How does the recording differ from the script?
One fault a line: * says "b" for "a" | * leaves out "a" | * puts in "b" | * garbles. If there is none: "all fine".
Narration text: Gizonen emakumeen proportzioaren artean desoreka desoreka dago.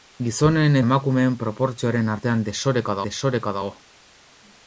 all fine